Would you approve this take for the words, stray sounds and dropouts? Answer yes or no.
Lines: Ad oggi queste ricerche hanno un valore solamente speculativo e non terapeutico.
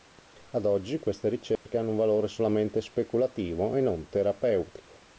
no